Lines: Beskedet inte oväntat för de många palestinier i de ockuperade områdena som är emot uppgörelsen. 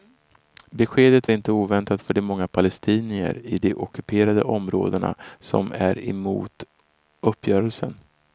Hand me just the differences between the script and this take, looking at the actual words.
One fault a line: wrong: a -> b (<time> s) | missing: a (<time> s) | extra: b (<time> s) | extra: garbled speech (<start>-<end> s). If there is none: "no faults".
no faults